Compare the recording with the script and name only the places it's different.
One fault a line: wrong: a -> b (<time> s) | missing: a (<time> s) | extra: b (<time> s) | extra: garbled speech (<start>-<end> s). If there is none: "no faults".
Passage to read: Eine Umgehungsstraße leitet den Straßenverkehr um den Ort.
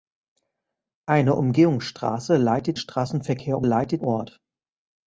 missing: den (2.8 s)
wrong: den -> leitet (3.6 s)